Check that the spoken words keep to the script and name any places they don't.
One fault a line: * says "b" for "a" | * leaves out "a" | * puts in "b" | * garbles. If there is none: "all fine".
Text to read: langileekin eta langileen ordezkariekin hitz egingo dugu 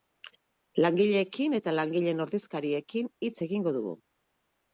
all fine